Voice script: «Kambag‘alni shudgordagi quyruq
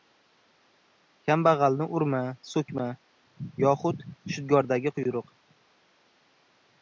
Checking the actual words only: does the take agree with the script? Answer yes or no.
no